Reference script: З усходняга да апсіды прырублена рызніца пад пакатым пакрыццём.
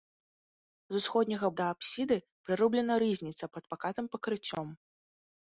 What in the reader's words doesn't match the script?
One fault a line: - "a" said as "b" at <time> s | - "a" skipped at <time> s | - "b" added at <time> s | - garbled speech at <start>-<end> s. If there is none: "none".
none